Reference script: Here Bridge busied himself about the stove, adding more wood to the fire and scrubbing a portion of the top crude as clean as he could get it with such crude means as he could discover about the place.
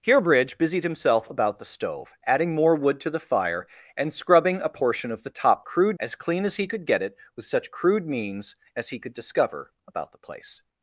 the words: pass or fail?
pass